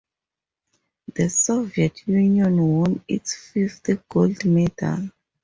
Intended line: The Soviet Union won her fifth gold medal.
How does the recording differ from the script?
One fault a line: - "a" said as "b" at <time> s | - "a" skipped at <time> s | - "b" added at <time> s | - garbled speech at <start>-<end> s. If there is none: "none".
- "her" said as "its" at 3.1 s